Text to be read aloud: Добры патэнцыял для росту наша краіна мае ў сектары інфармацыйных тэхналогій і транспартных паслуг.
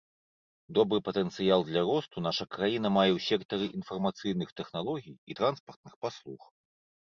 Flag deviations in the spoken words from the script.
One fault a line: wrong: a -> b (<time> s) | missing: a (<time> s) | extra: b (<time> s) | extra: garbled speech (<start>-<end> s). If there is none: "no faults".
no faults